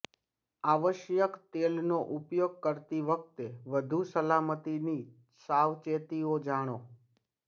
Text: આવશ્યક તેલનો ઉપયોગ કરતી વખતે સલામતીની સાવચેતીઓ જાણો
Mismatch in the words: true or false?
true